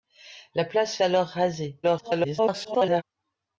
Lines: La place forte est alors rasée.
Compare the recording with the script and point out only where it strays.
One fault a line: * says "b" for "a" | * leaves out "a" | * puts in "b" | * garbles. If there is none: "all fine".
* leaves out "forte est"
* garbles